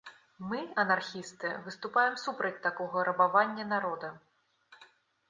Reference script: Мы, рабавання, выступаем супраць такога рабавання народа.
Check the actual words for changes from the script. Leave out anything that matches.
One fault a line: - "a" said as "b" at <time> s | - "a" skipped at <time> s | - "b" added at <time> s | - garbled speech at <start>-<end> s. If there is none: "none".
- "рабавання" said as "анархісты" at 0.8 s